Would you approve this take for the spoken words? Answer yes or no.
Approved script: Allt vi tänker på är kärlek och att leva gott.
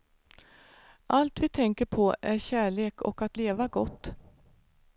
yes